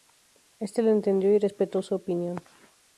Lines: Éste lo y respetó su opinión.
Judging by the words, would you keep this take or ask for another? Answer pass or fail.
fail